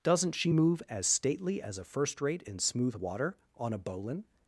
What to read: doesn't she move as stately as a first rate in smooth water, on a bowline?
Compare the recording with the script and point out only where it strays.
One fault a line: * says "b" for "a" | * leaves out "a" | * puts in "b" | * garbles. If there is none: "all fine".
all fine